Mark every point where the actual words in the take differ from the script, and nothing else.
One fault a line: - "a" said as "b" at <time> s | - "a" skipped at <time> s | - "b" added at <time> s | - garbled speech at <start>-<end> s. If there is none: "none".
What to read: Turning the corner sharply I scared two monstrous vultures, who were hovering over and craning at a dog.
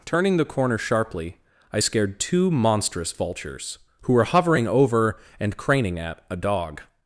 none